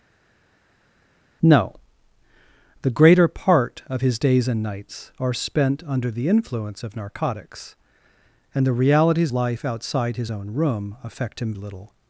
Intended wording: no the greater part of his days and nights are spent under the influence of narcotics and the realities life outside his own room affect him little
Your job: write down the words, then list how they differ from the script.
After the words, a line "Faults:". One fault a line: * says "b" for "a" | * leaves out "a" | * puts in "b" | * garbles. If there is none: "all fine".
no the greater part of his days and nights are spent under the influence of narcotics and the realities life outside his own room affect him little
Faults:
all fine